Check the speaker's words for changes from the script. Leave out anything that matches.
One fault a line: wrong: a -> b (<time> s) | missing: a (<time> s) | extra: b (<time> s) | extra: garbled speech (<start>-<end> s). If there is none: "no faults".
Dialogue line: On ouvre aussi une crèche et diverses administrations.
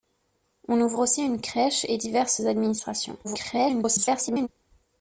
extra: garbled speech (3.2-4.5 s)